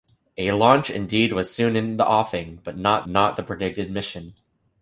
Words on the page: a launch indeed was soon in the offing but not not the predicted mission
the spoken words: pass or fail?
pass